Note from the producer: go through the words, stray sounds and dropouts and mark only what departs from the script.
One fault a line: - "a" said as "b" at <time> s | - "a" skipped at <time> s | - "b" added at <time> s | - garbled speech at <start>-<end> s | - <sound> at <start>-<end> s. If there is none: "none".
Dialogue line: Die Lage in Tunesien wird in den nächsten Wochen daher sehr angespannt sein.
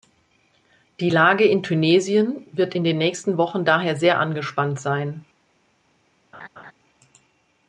- laugh at 6.3-6.7 s